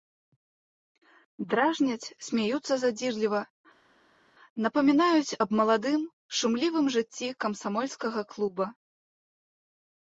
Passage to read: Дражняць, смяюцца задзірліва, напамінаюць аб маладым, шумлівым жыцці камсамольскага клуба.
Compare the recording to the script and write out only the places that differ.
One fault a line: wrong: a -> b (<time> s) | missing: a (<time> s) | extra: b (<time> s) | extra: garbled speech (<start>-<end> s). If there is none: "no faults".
no faults